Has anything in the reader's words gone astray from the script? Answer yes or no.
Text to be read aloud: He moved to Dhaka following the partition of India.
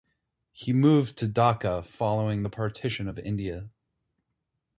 no